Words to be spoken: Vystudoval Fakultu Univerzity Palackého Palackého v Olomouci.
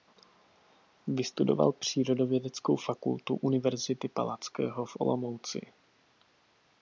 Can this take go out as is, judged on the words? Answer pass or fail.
fail